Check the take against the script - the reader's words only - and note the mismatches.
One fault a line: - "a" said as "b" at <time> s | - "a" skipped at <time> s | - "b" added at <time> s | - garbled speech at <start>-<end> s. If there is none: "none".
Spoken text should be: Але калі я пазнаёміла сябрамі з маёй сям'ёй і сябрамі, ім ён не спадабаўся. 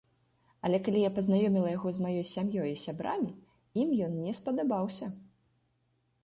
- "сябрамі" said as "яго" at 1.8 s